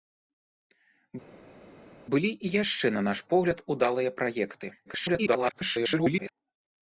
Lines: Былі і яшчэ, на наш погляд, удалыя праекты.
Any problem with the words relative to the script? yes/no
yes